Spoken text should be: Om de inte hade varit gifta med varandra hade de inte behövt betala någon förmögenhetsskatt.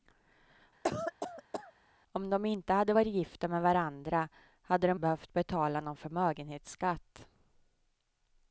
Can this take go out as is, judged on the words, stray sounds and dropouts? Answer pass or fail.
fail